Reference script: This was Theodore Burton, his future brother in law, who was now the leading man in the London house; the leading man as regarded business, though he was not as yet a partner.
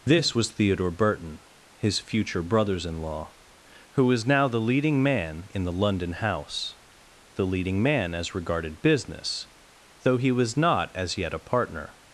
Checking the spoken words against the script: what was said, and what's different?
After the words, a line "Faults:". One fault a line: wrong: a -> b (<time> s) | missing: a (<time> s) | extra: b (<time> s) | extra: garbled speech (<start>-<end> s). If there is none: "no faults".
This was Theodore Burton, his future brothers in law, who was now the leading man in the London house; the leading man as regarded business, though he was not as yet a partner.
Faults:
wrong: brother -> brothers (2.4 s)